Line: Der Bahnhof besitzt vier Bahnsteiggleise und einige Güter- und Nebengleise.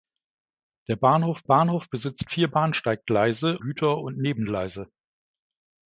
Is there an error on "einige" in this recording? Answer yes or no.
yes